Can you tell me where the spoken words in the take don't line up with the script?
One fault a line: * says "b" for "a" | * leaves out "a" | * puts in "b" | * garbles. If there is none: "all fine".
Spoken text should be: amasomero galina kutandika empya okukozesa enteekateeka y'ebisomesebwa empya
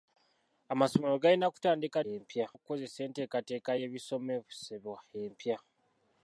all fine